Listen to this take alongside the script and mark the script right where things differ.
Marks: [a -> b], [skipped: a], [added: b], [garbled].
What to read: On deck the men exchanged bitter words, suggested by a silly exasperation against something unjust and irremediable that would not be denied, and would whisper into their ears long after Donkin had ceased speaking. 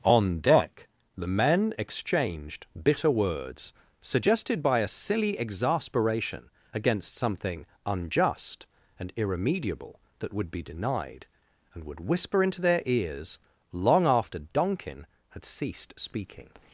On deck the men exchanged bitter words, suggested by a silly exasperation against something unjust and irremediable that would [skipped: not] be denied, and would whisper into their ears long after Donkin had ceased speaking.